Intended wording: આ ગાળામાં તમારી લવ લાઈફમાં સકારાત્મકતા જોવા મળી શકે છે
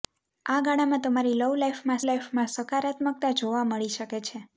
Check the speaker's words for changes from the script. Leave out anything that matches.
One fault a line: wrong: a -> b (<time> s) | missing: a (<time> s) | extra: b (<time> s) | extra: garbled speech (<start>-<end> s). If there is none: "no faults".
extra: લાઈફમાં (2.1 s)